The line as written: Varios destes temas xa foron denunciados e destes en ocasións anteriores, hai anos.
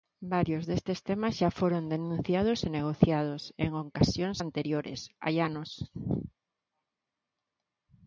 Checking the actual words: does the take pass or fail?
fail